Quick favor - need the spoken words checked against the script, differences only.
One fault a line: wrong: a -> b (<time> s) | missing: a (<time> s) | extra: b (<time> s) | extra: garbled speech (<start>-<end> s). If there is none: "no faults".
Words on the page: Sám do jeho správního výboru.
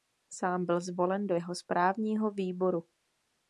extra: byl zvolen (0.7 s)